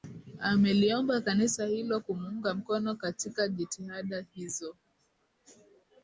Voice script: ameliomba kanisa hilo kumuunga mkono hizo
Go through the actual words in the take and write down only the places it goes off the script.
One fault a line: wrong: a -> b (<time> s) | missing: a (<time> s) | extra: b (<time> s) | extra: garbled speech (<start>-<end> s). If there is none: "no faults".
extra: katika jitihada (3.0 s)